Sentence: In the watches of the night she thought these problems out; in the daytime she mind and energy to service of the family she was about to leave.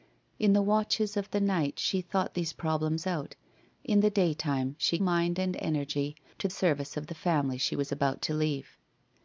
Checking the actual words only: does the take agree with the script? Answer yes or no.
yes